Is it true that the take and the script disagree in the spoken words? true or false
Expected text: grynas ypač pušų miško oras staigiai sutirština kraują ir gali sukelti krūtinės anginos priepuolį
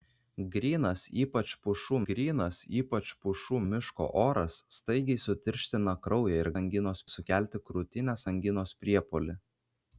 true